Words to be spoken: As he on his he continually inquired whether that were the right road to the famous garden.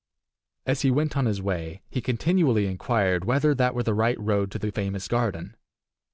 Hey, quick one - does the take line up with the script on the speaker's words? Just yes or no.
no